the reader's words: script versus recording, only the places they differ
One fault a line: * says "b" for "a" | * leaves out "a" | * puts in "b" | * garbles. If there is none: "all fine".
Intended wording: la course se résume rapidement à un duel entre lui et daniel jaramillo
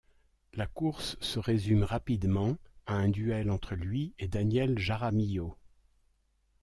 all fine